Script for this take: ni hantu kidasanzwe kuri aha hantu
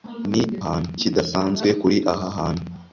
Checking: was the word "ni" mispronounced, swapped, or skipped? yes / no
no